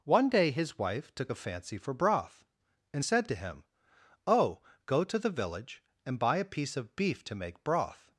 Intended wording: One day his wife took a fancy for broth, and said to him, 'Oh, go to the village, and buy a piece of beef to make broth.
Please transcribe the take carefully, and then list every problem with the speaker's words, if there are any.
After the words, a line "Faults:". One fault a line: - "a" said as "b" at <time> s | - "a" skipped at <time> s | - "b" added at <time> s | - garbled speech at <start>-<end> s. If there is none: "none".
One day his wife took a fancy for broth, and said to him, 'Oh, go to the village, and buy a piece of beef to make broth.
Faults:
none